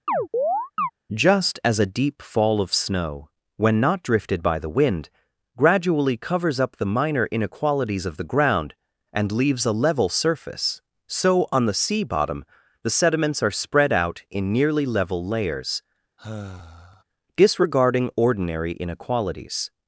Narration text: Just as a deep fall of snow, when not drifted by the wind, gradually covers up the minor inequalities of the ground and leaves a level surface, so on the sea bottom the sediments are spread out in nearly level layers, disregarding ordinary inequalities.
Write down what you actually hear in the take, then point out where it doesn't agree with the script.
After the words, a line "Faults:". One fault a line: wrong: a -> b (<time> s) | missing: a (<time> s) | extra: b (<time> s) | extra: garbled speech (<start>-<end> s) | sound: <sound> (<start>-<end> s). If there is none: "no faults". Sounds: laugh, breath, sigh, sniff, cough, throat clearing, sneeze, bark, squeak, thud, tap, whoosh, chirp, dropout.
Just as a deep fall of snow, when not drifted by the wind, gradually covers up the minor inequalities of the ground and leaves a level surface, so on the sea bottom the sediments are spread out in nearly level layers, disregarding ordinary inequalities.
Faults:
sound: chirp (0.1-0.9 s)
sound: sigh (16.2-17.0 s)